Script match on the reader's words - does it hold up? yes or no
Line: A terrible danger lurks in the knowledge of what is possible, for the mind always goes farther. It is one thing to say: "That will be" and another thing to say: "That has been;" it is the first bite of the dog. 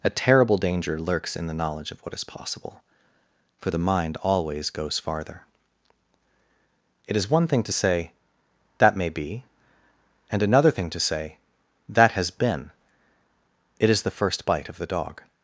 no